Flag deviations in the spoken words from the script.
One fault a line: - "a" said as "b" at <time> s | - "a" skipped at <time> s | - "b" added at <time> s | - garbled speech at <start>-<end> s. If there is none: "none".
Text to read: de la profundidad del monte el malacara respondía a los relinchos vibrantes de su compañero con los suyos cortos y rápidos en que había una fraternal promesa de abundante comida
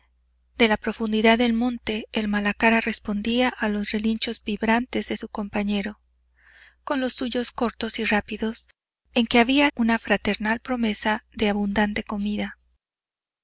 none